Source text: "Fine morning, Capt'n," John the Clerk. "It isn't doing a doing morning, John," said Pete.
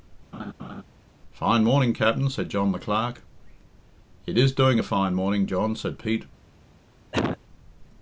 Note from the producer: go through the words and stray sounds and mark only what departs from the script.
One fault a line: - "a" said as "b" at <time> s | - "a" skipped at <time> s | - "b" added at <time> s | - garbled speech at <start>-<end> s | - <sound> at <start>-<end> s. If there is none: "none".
- laugh at 0.3-0.8 s
- "said" added at 2.3 s
- "isn't" said as "is" at 4.4 s
- "doing" said as "fine" at 4.8 s
- cough at 7.1-7.4 s